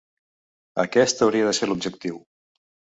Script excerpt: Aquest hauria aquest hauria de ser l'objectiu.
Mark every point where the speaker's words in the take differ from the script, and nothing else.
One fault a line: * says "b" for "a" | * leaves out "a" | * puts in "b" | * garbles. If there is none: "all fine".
* leaves out "aquest hauria"